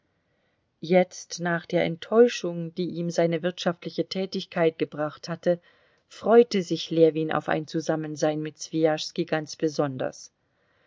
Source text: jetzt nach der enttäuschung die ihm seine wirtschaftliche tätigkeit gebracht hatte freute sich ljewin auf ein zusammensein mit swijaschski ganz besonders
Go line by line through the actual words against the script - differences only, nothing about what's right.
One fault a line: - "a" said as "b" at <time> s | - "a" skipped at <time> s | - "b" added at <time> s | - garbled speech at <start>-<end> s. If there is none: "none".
none